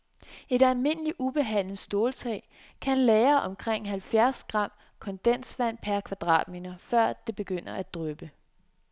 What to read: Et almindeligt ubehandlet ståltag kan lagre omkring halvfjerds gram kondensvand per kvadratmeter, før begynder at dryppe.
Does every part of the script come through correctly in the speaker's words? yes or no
no